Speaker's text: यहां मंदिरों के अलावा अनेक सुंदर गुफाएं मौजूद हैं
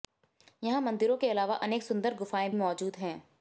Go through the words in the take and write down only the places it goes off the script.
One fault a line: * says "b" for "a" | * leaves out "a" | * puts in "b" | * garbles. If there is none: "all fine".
all fine